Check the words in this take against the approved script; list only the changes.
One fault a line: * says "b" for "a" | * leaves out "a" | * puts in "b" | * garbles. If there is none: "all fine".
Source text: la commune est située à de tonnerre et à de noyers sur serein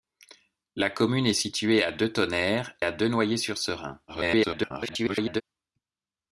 * leaves out "et"
* garbles